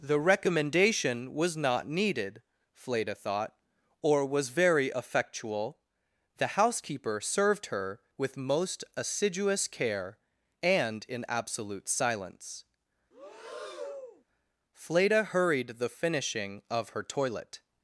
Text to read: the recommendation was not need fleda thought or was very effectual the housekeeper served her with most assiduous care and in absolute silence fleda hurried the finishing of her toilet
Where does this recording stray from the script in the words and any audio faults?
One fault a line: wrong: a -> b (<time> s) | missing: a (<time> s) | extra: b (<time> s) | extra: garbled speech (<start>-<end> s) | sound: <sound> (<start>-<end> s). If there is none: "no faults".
wrong: need -> needed (1.9 s)
sound: breath (13.1-14.2 s)